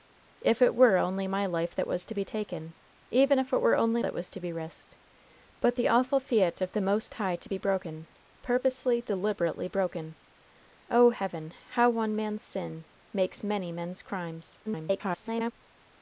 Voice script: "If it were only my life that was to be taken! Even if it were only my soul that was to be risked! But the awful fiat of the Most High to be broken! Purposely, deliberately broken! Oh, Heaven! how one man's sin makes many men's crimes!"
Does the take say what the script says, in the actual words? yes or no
no